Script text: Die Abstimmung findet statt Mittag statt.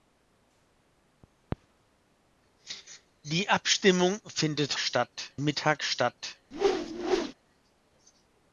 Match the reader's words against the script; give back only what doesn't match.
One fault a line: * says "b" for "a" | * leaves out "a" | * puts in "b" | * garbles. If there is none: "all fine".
all fine